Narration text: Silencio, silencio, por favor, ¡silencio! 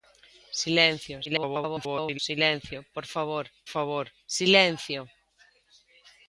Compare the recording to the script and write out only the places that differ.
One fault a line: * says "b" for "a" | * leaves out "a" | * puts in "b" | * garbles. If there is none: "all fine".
* garbles
* puts in "favor"